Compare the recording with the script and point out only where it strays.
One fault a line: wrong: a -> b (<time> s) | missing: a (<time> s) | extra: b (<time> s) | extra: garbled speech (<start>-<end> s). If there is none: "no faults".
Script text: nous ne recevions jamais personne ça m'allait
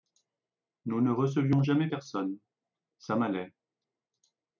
no faults